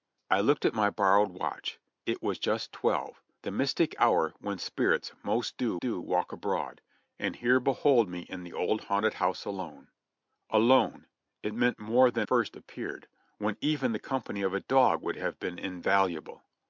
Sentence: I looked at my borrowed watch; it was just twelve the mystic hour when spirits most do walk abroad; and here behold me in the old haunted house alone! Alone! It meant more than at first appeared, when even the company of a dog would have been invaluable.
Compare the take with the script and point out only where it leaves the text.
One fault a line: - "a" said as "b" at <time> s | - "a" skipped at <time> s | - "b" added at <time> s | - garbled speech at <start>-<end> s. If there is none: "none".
- "do" added at 5.8 s
- "at" skipped at 12.3 s